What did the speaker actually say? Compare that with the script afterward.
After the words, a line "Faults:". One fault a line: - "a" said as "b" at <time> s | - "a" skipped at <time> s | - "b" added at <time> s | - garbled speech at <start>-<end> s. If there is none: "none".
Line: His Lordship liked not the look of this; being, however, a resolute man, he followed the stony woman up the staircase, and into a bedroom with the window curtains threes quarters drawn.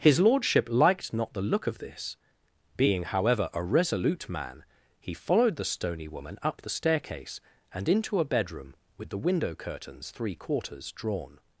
His Lordship liked not the look of this; being, however, a resolute man, he followed the stony woman up the staircase, and into a bedroom with the window curtains three quarters drawn.
Faults:
- "threes" said as "three" at 10.1 s